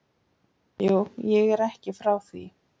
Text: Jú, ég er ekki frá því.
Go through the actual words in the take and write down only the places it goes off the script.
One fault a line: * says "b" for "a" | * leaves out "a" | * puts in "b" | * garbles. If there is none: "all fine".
all fine